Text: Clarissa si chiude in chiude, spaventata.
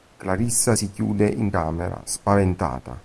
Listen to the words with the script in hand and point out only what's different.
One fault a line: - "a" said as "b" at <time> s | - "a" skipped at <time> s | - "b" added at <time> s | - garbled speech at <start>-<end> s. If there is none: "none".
- "chiude" said as "camera" at 1.5 s